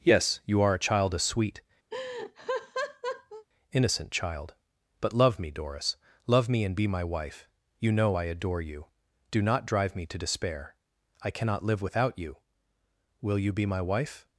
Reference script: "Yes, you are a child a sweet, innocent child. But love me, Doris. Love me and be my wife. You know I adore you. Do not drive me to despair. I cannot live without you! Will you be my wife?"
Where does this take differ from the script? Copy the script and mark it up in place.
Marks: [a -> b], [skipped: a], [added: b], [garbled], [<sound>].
"Yes, you are a child a sweet, [laugh] innocent child. But love me, Doris. Love me and be my wife. You know I adore you. Do not drive me to despair. I cannot live without you! Will you be my wife?"